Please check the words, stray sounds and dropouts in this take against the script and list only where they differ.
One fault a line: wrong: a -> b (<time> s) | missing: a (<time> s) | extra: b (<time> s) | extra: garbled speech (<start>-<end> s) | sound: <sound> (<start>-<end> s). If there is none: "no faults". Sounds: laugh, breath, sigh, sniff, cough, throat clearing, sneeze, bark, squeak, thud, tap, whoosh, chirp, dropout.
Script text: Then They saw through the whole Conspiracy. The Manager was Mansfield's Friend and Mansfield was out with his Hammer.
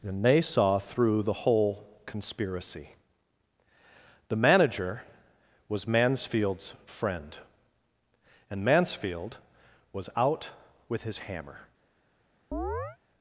wrong: Then -> And (0.0 s)
sound: chirp (12.5-13.0 s)